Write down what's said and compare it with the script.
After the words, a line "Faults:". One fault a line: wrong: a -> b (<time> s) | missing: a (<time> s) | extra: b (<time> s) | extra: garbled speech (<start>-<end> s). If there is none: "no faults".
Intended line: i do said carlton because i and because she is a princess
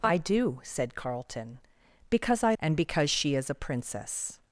i do said carlton because i and because she is a princess
Faults:
no faults